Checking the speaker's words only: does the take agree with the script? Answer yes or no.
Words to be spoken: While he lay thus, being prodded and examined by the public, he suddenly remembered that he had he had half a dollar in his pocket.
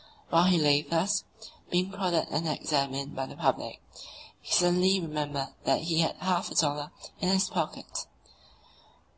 no